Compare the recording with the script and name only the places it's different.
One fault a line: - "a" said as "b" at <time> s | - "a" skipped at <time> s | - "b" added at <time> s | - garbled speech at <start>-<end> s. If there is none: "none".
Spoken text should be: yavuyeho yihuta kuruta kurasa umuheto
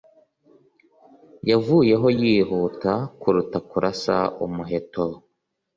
none